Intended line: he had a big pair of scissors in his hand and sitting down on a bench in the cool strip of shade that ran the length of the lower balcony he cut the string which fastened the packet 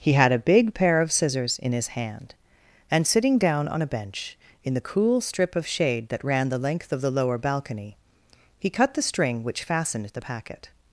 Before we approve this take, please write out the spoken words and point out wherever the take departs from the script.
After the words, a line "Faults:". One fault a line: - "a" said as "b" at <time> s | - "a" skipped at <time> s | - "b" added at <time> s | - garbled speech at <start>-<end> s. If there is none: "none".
he had a big pair of scissors in his hand and sitting down on a bench in the cool strip of shade that ran the length of the lower balcony he cut the string which fastened the packet
Faults:
none